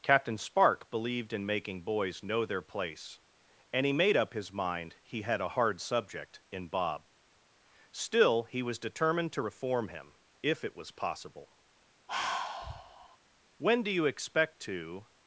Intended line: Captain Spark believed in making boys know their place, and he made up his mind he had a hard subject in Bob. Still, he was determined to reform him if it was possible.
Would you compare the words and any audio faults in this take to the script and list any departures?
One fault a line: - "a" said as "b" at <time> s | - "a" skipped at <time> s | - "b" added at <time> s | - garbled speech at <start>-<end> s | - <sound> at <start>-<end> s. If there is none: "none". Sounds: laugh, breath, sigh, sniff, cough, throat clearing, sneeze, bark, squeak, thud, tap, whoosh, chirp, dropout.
- sigh at 12.1-13.2 s
- "When do you expect to" added at 13.6 s